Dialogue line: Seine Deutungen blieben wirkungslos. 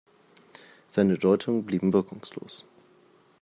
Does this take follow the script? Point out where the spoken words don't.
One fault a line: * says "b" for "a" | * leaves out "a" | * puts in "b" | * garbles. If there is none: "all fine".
all fine